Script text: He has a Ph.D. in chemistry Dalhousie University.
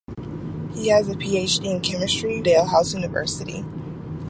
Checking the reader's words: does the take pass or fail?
pass